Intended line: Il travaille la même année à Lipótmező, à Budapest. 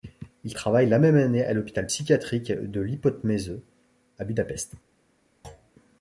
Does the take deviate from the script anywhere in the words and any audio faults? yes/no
yes